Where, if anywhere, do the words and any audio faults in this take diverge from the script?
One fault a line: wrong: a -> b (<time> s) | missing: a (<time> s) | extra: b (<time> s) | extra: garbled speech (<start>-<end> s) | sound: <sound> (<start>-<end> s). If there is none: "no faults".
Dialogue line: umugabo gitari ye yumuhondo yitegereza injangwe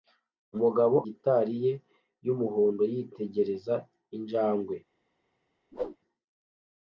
sound: whoosh (5.7-6.0 s)